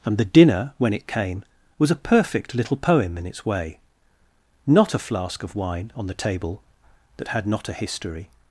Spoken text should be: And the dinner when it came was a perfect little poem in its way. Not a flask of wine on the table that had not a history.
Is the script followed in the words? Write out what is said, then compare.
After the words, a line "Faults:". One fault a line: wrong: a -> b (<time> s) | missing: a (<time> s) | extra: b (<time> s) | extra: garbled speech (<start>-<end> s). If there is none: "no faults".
And the dinner when it came was a perfect little poem in its way. Not a flask of wine on the table that had not a history.
Faults:
no faults